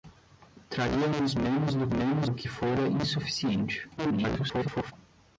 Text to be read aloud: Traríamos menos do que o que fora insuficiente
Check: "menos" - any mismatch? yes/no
no